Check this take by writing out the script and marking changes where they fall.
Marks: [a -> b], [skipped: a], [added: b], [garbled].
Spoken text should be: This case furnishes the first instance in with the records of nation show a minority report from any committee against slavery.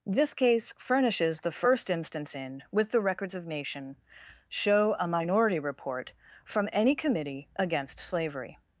This case furnishes the first instance in with the records of nation show a minority report from any committee against slavery.